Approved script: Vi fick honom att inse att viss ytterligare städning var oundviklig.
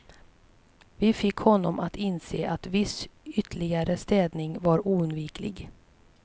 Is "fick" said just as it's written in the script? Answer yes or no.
yes